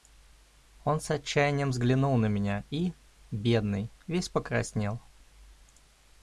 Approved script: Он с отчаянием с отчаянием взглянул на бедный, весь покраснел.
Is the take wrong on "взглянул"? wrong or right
wrong